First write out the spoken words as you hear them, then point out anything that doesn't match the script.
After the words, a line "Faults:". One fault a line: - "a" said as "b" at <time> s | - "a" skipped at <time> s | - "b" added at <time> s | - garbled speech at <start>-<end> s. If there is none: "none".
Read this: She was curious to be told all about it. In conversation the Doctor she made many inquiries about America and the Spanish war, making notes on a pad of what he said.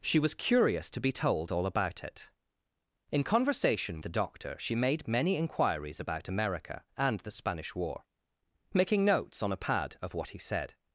She was curious to be told all about it. In conversation the Doctor she made many inquiries about America and the Spanish war, making notes on a pad of what he said.
Faults:
none